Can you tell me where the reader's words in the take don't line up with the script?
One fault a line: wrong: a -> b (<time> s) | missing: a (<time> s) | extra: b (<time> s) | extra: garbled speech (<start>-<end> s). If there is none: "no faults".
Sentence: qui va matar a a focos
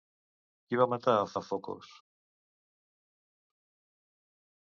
no faults